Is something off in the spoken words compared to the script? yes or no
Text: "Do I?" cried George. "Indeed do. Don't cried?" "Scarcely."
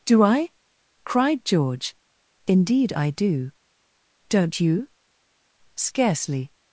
yes